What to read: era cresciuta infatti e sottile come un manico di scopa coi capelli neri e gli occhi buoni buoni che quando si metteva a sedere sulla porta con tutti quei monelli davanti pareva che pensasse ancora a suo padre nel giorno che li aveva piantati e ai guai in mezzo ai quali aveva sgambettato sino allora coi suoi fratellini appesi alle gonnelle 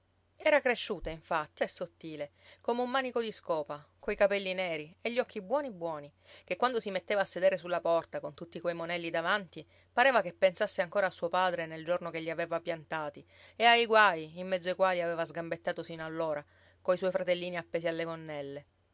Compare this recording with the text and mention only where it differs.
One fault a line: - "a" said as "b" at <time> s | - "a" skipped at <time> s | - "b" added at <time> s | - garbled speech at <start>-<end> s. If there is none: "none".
none